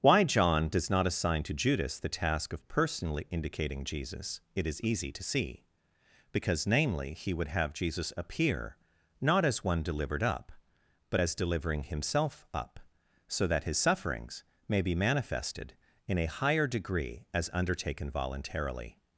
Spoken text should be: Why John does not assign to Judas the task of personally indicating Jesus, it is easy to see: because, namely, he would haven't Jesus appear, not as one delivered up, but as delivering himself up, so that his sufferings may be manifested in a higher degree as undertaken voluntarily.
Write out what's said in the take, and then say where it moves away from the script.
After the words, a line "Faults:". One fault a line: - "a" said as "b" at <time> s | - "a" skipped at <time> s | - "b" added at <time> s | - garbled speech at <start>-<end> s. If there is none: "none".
Why John does not assign to Judas the task of personally indicating Jesus, it is easy to see: because, namely, he would have Jesus appear, not as one delivered up, but as delivering himself up, so that his sufferings may be manifested in a higher degree as undertaken voluntarily.
Faults:
- "haven't" said as "have" at 7.5 s